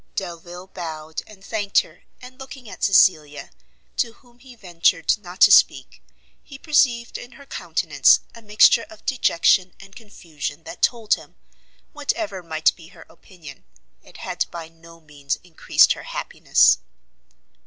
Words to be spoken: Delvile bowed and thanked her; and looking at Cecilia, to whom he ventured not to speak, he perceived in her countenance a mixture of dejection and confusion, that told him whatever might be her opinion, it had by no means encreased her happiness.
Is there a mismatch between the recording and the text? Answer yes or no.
no